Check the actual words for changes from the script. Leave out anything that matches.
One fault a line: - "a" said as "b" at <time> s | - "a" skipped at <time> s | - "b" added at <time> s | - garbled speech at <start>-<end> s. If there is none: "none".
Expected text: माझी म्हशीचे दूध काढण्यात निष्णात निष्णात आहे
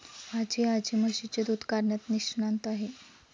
- "आजी" added at 0.7 s
- "निष्णात" skipped at 2.7 s